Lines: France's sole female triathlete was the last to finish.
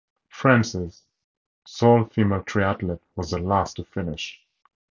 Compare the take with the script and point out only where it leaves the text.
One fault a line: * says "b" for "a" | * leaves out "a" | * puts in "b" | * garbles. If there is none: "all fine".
all fine